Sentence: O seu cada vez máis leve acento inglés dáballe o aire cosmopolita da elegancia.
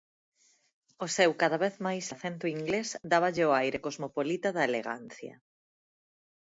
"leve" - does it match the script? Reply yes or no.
no